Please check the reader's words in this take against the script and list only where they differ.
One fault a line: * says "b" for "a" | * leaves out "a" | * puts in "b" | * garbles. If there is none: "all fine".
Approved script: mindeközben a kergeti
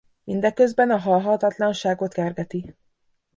* puts in "halhatatlanságot"